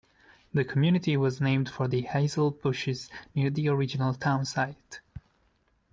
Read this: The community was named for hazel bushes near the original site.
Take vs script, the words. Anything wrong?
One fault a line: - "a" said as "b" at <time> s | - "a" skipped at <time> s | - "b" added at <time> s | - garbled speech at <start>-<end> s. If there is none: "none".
- "the" added at 1.9 s
- "town" added at 4.1 s